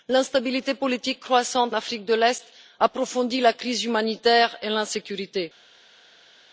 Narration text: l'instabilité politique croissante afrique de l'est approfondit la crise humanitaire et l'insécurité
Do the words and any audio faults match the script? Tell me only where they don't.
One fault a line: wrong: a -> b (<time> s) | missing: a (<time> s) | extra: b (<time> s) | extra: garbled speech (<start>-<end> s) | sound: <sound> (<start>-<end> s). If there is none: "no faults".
no faults